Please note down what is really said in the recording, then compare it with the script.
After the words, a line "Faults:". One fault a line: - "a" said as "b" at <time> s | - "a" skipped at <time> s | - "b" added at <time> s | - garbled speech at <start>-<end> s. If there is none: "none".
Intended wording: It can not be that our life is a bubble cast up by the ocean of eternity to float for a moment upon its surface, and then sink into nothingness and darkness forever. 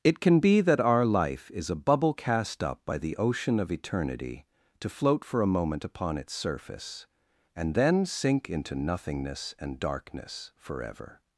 It can be that our life is a bubble cast up by the ocean of eternity to float for a moment upon its surface, and then sink into nothingness and darkness forever.
Faults:
- "not" skipped at 0.4 s